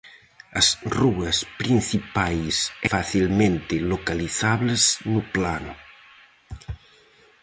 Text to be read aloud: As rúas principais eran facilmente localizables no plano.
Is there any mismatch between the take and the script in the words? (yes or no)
yes